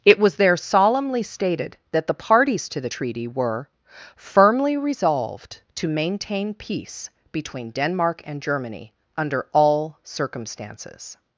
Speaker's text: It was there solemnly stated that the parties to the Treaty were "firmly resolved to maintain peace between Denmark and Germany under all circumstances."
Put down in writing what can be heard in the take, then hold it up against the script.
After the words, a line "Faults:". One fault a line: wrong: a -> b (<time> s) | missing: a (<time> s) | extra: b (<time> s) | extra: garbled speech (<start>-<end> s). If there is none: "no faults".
It was there solemnly stated that the parties to the Treaty were "firmly resolved to maintain peace between Denmark and Germany under all circumstances."
Faults:
no faults